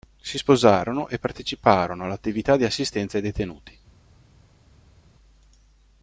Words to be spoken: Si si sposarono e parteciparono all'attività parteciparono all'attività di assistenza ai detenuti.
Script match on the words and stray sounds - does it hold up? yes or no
no